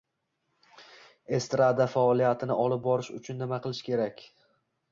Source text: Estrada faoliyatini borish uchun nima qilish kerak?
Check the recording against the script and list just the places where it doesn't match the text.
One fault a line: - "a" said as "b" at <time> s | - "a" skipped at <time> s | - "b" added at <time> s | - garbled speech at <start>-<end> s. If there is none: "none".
- "olib" added at 2.6 s